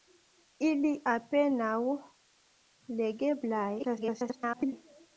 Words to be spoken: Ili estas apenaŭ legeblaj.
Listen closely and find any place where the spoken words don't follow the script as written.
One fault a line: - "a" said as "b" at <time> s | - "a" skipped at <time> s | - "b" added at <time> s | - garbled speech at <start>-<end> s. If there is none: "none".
- "estas" skipped at 0.9 s
- garbled speech at 3.8-4.7 s